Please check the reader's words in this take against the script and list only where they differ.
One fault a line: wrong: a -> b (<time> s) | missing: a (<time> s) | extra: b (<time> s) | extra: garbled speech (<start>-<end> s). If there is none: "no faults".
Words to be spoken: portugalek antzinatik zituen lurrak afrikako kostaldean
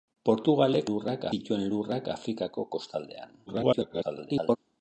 wrong: antzinatik -> lurrak (0.9 s)
extra: garbled speech (3.5-4.6 s)